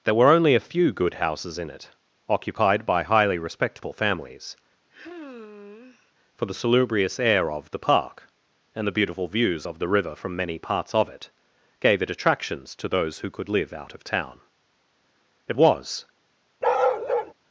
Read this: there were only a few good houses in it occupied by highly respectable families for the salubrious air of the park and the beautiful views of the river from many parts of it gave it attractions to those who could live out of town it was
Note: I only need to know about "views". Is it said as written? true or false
true